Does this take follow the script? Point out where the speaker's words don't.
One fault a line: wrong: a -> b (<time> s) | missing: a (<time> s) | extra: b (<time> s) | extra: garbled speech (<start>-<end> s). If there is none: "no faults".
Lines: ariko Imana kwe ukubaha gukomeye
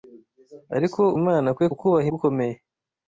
no faults